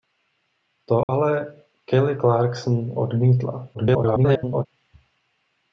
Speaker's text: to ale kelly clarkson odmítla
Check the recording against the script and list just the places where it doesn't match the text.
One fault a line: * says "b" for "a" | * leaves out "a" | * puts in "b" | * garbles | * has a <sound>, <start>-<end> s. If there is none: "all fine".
* has a dropout, 1.0-1.1 s
* garbles